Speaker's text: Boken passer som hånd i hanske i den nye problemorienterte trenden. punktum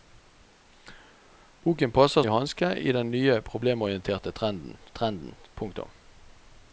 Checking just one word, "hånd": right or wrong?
wrong